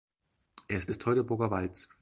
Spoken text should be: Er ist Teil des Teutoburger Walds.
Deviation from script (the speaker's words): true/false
true